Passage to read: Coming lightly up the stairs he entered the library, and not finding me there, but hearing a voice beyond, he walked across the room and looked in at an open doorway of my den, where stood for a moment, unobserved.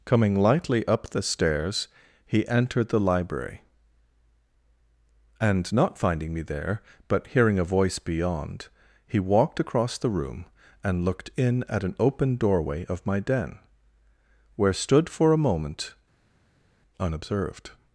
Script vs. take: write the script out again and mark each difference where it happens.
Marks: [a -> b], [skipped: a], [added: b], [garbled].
Coming lightly up the stairs he entered the library, and not finding me there, but hearing a voice beyond, he walked across the room and looked in at an open doorway of my den, where stood for a moment, unobserved.